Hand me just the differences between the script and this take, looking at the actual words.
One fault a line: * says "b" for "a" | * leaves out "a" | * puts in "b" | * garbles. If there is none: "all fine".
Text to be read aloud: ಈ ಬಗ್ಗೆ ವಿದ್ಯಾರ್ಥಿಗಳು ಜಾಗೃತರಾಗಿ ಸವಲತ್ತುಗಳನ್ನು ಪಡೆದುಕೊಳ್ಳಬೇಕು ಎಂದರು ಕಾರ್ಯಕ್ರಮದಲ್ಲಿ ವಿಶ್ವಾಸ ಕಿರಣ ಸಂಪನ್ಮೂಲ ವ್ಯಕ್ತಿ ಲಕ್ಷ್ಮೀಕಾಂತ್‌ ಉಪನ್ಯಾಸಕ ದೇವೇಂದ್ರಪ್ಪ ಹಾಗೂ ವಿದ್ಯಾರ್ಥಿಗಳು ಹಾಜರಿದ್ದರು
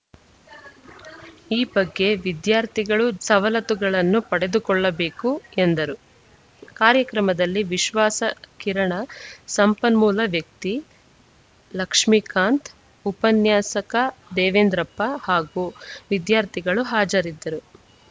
* leaves out "ಜಾಗೃತರಾಗಿ"